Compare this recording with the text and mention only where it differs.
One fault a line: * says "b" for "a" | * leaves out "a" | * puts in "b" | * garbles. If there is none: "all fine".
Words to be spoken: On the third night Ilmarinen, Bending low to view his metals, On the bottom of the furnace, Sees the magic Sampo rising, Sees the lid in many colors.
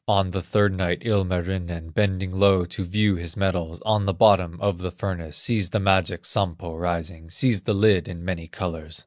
all fine